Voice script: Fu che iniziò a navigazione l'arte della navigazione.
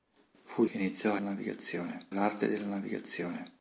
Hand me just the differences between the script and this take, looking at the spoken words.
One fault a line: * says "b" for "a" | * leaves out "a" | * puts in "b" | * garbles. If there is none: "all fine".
all fine